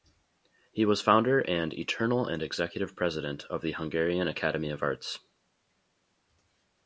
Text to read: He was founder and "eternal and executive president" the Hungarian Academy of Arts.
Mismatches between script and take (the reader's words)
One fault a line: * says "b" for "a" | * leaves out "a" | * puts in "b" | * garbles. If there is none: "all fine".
* puts in "of"